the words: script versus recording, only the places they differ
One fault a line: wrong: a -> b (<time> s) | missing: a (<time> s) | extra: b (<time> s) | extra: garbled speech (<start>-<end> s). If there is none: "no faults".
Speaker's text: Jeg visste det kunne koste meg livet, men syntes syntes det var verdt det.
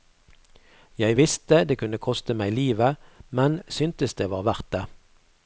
missing: syntes (4.1 s)